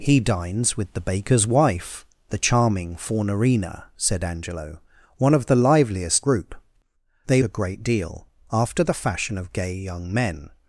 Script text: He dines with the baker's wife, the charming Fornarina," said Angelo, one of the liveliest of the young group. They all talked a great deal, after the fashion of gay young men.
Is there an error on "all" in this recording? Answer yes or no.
yes